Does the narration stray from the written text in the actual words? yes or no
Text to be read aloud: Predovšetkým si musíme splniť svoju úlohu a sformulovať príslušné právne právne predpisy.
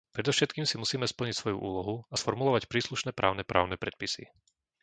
no